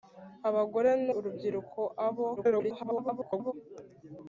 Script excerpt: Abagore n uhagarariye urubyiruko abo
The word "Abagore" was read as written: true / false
true